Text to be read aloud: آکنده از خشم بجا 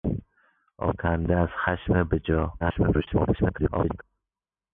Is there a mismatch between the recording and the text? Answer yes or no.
yes